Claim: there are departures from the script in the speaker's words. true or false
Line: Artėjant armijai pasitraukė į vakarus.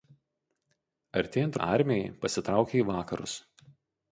false